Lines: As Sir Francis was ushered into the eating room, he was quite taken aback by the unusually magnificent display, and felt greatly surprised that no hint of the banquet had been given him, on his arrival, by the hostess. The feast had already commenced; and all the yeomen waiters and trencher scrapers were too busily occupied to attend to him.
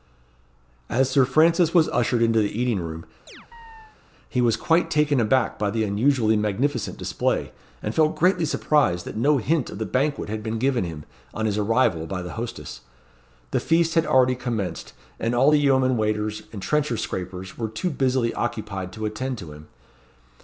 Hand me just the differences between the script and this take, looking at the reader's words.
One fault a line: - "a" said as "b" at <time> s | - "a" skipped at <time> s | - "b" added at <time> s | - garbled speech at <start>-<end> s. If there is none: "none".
none